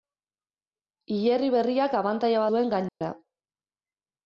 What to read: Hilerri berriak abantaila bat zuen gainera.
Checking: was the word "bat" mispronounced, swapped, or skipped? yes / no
yes